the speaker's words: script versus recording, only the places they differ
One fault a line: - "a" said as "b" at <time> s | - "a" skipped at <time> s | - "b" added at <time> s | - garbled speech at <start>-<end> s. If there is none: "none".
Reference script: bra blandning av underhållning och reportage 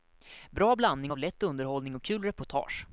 - "lätt" added at 1.2 s
- "kul" added at 2.0 s